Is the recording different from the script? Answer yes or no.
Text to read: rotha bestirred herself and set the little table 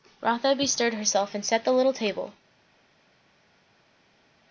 no